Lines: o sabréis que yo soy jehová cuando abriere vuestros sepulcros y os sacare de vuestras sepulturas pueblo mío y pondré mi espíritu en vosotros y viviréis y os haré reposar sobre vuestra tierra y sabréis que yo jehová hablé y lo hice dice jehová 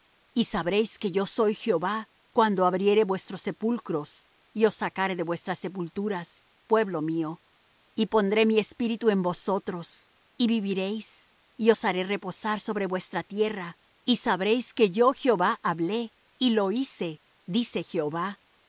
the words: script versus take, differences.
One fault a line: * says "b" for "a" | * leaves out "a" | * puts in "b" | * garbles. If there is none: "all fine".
* says "y" for "o"